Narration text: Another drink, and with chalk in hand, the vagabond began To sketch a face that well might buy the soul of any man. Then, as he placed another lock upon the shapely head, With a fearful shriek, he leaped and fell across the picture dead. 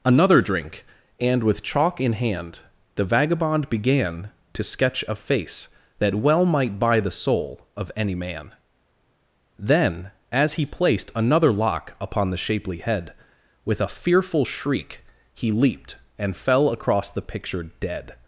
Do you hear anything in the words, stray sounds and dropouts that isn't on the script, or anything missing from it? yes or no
no